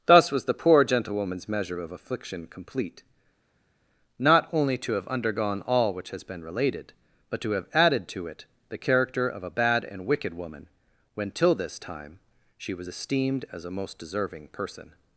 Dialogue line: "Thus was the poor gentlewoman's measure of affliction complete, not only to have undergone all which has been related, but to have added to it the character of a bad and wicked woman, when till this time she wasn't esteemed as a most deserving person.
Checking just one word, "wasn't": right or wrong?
wrong